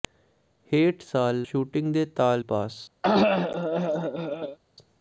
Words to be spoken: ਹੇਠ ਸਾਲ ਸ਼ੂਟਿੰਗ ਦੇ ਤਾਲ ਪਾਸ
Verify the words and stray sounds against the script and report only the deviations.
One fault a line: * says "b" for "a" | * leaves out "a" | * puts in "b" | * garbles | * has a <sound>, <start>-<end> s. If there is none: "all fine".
* has a cough, 3.0-4.6 s